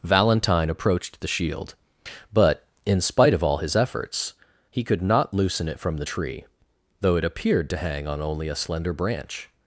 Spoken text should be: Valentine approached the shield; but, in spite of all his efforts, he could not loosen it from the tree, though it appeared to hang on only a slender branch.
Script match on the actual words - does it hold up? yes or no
yes